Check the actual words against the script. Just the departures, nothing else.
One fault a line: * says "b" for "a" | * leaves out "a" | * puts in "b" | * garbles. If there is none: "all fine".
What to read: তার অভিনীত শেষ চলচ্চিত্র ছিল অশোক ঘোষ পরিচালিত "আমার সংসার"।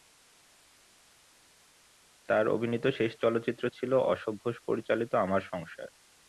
all fine